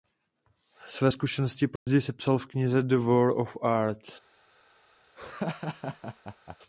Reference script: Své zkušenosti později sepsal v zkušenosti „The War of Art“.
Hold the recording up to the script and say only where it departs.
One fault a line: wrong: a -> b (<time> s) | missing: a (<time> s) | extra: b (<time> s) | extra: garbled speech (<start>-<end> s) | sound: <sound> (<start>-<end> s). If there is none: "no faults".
sound: dropout (1.8-1.9 s)
wrong: zkušenosti -> knize (2.5 s)
sound: laugh (5.2-6.6 s)